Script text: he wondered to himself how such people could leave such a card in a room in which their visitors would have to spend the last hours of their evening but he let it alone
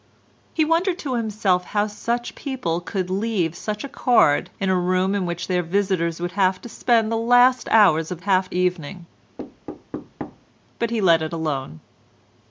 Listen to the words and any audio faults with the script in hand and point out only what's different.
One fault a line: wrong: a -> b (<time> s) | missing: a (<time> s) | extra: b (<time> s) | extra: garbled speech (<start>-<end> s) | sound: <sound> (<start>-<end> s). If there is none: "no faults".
wrong: their -> have (8.2 s)
sound: thud (9.4-10.5 s)